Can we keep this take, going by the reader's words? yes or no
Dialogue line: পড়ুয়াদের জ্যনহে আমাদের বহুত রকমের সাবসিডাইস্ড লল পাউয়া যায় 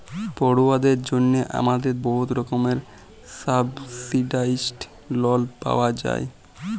yes